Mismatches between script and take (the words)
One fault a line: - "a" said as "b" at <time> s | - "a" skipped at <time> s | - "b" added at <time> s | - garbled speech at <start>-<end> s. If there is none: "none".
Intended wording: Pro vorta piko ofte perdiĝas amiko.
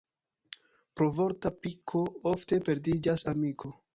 none